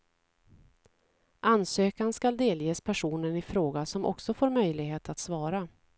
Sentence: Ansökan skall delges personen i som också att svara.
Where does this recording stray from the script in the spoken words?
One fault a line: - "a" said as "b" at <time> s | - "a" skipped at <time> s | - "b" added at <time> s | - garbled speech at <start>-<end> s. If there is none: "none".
- "fråga" added at 3.4 s
- "får möjlighet" added at 4.3 s